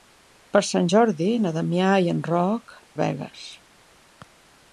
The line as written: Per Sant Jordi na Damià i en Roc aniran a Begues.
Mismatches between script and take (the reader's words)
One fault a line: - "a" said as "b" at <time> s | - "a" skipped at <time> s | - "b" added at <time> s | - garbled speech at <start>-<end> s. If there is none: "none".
- "aniran" skipped at 2.8 s